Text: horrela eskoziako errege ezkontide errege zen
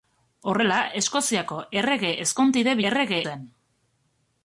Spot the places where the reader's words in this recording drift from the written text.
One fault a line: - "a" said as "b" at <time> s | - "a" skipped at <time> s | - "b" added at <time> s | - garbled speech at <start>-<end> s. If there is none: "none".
none